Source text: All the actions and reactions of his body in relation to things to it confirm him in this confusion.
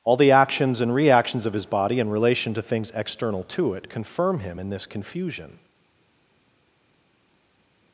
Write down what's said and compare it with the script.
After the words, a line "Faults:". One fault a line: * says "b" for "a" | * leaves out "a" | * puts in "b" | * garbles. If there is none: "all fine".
All the actions and reactions of his body in relation to things external to it confirm him in this confusion.
Faults:
* puts in "external"